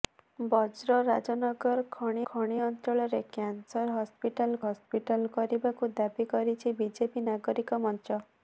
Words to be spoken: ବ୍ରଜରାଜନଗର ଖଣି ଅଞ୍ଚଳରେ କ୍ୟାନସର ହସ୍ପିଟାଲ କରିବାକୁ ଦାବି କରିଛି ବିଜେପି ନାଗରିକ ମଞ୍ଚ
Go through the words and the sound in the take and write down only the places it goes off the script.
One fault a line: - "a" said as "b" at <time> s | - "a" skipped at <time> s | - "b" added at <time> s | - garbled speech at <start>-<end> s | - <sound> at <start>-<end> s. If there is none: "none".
- "ଖଣି" added at 2.2 s
- "ହସ୍ପିଟାଲ" added at 4.7 s